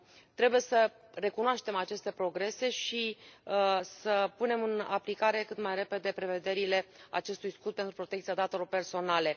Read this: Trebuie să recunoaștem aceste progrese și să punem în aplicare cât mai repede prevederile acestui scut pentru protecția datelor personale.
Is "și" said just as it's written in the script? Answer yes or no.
yes